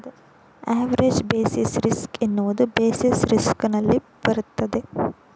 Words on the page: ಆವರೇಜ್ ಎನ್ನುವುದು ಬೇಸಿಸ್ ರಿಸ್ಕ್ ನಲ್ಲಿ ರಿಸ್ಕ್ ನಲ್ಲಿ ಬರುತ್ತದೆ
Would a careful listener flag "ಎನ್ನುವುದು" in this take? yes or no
yes